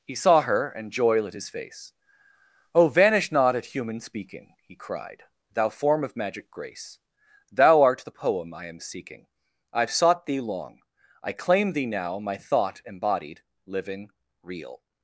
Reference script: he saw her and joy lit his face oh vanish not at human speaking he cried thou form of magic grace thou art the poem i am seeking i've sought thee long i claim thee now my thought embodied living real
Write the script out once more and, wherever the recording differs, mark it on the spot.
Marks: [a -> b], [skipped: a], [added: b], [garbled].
he saw her and joy lit his face oh vanish not at human speaking he cried thou form of magic grace thou art the poem i am seeking i've sought thee long i claim thee now my thought embodied living real